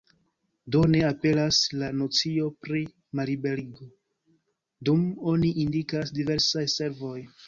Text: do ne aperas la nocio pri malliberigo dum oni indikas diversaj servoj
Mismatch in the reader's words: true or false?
false